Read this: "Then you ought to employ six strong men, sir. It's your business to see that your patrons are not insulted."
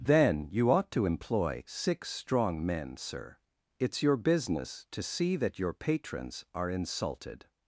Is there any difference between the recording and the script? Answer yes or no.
yes